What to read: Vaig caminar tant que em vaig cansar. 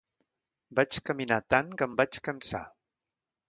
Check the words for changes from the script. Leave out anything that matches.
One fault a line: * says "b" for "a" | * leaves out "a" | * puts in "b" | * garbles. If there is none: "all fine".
all fine